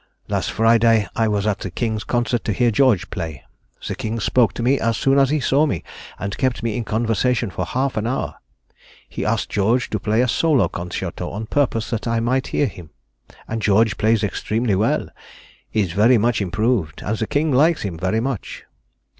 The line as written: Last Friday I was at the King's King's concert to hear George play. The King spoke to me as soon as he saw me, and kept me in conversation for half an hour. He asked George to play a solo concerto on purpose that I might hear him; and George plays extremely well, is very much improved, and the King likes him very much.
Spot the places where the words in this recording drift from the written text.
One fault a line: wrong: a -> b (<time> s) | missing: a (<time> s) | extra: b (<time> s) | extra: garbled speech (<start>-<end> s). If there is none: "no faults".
missing: King's (2.0 s)